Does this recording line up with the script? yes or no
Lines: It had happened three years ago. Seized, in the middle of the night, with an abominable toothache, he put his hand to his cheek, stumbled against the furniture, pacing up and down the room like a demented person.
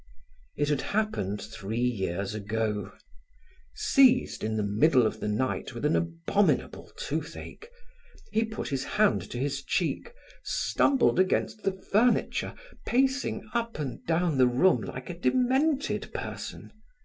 yes